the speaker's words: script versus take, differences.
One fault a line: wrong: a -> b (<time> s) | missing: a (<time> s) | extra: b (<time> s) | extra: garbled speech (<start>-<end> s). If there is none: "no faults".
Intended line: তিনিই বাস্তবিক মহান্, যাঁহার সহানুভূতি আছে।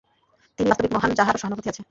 no faults